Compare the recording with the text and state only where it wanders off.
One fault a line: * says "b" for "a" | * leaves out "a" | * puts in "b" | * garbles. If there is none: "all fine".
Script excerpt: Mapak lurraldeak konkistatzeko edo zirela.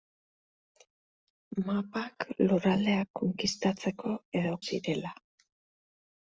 all fine